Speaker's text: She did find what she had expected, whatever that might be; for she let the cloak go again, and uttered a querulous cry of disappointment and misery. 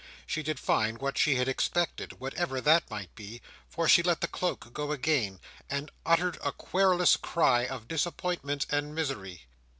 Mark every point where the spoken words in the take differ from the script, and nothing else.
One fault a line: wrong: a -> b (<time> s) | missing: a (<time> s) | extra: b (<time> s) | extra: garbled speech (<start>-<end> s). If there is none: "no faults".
no faults